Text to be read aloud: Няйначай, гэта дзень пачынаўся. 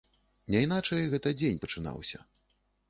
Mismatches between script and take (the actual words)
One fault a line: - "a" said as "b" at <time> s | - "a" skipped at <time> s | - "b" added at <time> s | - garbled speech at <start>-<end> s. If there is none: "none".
none